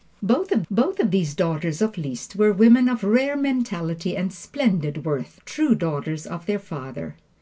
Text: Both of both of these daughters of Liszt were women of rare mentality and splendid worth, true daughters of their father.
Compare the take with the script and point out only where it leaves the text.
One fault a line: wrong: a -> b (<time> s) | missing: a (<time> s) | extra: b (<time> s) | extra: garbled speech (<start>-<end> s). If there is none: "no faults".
no faults